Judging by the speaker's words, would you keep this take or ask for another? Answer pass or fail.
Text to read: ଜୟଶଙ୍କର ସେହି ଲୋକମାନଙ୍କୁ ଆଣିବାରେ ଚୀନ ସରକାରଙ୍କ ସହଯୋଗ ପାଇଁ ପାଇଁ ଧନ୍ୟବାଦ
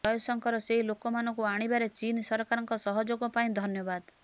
fail